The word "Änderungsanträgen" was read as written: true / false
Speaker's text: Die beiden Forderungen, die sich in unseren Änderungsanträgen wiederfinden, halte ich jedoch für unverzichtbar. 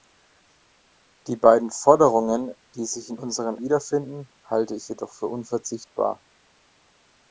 false